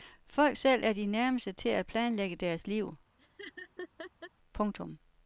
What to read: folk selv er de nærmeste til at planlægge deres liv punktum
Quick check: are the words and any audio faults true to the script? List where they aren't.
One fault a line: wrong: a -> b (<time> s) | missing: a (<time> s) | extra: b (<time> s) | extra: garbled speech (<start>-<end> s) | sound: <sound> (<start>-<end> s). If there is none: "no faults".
sound: laugh (3.2-4.3 s)